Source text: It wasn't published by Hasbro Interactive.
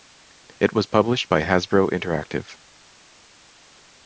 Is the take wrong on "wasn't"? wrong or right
wrong